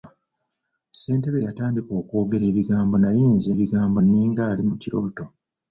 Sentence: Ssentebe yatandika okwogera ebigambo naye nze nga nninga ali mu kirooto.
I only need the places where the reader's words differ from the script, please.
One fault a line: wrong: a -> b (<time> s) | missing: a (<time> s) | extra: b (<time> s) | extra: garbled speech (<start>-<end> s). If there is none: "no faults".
wrong: nga -> ebigambo (3.5 s)